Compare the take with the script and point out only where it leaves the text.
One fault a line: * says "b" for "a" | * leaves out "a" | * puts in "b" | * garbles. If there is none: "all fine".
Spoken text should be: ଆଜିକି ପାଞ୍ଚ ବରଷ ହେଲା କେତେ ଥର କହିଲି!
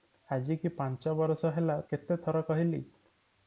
all fine